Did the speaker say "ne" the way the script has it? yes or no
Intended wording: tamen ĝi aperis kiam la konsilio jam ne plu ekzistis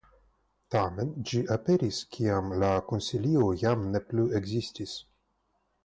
yes